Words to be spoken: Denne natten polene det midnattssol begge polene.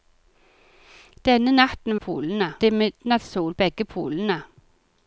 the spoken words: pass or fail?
pass